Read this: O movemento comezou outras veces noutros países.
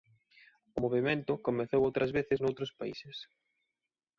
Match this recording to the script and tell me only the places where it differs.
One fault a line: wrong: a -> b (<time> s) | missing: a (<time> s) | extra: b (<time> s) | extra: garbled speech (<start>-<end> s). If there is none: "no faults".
no faults